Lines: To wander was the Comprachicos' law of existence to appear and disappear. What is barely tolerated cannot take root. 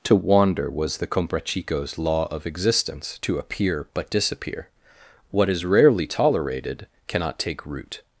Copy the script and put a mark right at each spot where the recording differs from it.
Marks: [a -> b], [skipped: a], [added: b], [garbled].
To wander was the Comprachicos' law of existence to appear [and -> but] disappear. What is [barely -> rarely] tolerated cannot take root.